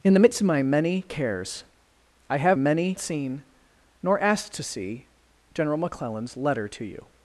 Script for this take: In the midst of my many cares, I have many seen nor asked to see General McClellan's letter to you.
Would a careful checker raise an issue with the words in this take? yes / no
no